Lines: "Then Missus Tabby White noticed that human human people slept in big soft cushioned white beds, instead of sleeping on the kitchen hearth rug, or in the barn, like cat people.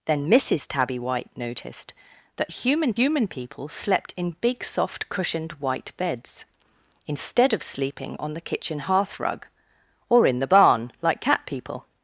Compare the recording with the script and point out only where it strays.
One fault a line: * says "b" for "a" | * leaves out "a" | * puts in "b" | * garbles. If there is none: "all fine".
all fine